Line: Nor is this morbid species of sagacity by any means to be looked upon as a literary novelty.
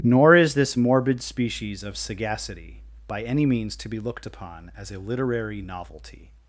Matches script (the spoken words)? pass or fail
pass